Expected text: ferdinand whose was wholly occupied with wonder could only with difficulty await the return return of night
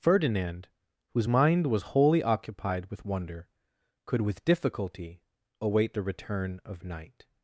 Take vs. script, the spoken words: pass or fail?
fail